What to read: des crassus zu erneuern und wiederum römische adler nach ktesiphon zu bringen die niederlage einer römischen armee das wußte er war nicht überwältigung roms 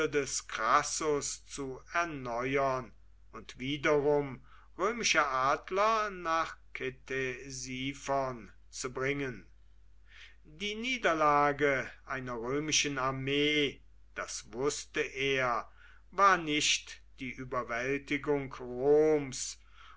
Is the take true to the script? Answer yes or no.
no